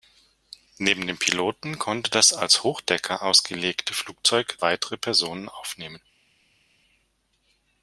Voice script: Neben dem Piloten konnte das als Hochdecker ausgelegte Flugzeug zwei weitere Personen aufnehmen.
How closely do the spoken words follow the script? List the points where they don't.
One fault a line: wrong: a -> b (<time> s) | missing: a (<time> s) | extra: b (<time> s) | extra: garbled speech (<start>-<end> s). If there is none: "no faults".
missing: zwei (4.6 s)